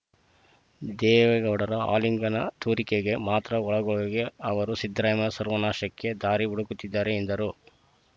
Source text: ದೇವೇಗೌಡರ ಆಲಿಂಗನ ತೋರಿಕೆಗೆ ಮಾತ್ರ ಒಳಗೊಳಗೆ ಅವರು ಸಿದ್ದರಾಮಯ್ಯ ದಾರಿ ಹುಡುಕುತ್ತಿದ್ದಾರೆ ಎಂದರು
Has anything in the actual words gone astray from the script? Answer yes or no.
yes